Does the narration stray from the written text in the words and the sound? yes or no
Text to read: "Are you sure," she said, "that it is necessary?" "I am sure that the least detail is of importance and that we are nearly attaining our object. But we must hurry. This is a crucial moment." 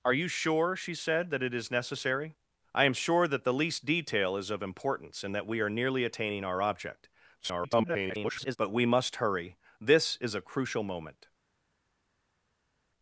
yes